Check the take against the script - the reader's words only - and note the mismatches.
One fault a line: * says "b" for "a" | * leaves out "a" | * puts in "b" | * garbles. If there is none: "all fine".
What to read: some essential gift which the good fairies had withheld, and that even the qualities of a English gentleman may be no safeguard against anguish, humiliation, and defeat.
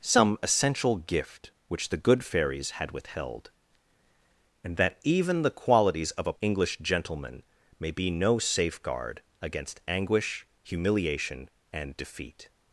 all fine